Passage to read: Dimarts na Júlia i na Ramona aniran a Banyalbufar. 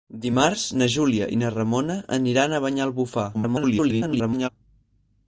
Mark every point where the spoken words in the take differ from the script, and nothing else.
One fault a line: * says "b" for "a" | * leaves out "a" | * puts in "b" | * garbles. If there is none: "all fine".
* garbles